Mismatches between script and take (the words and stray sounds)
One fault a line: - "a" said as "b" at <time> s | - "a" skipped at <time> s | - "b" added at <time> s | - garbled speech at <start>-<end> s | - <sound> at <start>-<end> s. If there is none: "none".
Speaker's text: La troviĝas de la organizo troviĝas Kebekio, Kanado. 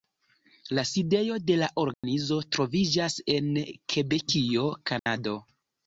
- "troviĝas" said as "sidejo" at 0.9 s
- dropout at 1.9-2.0 s
- "en" added at 3.4 s
- dropout at 5.0-5.1 s